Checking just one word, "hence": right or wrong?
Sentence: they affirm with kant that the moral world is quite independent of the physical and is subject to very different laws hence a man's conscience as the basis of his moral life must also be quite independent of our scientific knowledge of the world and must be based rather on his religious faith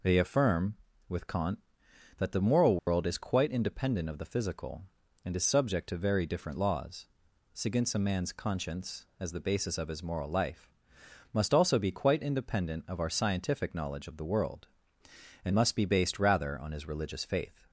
wrong